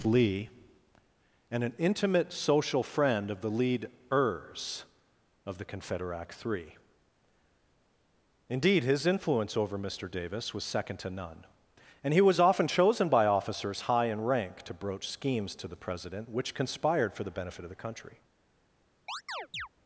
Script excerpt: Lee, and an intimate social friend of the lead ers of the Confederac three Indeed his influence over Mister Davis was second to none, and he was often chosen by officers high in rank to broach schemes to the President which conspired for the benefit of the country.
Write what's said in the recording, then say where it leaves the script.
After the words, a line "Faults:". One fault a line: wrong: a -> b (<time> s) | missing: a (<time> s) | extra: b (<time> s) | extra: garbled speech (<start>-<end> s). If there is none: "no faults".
Lee, and an intimate social friend of the lead ers of the Confederac three Indeed his influence over Mister Davis was second to none, and he was often chosen by officers high in rank to broach schemes to the President which conspired for the benefit of the country.
Faults:
no faults